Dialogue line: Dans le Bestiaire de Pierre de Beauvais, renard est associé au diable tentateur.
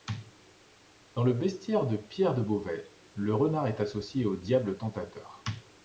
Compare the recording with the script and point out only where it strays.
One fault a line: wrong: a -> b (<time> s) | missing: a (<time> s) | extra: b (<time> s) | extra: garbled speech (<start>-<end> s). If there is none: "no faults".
extra: le (3.2 s)